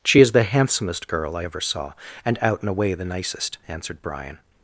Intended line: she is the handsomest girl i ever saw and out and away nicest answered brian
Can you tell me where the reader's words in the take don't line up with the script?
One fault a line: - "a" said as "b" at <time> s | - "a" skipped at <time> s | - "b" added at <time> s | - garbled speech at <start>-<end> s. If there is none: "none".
- "the" added at 2.9 s